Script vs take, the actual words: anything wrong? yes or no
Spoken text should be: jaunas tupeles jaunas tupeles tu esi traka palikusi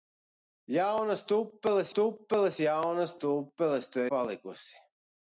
yes